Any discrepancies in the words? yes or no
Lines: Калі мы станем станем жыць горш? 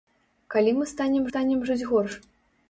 no